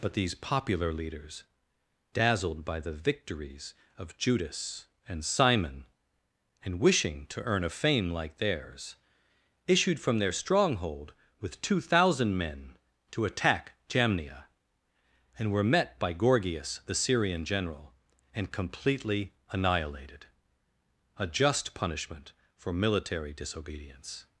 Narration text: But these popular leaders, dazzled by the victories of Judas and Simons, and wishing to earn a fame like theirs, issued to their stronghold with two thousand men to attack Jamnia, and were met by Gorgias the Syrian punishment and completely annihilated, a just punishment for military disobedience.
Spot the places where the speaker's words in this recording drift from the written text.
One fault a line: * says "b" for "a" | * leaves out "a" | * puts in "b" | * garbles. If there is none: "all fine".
* says "Simon" for "Simons"
* says "from" for "to"
* says "general" for "punishment"